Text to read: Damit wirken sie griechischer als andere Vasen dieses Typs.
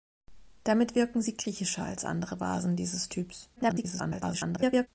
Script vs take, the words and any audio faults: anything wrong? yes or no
yes